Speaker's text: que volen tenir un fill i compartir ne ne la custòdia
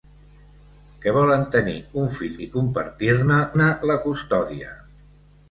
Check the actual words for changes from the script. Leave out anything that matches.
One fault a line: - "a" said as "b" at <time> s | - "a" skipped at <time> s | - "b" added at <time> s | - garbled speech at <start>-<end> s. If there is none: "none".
none